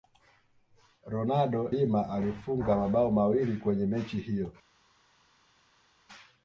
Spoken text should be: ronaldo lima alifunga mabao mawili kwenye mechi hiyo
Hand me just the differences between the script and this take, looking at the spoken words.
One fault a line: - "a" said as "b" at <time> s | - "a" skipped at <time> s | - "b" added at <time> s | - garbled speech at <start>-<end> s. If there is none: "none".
none